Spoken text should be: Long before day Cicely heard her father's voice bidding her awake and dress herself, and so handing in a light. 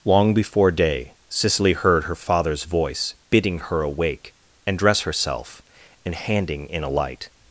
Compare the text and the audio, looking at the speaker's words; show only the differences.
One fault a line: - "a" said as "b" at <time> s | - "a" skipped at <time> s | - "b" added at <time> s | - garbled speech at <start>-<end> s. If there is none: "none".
- "so" skipped at 6.2 s